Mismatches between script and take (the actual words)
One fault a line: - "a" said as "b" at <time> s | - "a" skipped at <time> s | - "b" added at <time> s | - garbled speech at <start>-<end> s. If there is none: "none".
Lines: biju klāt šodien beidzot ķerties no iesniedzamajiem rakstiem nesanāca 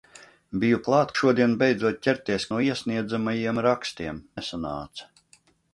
none